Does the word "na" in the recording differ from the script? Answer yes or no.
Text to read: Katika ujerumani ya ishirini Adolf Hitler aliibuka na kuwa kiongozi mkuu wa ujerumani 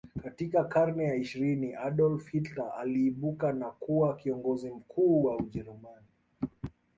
no